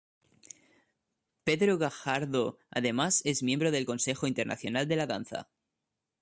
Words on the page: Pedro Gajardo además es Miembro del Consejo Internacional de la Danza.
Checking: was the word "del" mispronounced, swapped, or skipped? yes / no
no